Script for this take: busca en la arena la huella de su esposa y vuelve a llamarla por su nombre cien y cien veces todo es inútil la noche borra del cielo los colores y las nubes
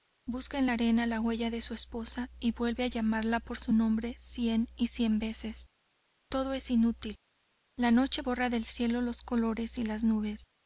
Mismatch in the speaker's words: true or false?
false